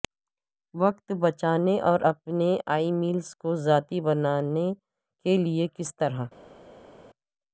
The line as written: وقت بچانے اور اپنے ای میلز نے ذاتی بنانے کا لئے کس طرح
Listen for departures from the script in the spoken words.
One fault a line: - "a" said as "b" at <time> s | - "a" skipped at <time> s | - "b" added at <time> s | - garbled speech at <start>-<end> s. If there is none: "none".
- "نے" said as "کو" at 3.4 s
- "کا" said as "کے" at 5.2 s